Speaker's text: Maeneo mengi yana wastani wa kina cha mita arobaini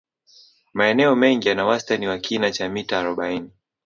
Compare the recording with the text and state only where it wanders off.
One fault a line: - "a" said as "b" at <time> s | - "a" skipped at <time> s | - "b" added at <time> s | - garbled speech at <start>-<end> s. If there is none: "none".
none